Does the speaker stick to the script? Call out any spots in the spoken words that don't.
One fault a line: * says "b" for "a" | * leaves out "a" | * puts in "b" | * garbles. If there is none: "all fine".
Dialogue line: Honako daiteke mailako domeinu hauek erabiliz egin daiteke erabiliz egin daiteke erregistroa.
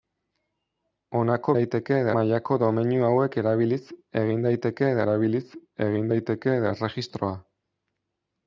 all fine